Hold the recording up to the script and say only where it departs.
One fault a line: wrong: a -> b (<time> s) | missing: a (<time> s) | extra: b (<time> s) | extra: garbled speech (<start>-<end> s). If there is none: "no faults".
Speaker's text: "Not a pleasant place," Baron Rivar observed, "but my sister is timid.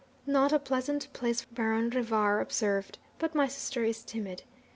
no faults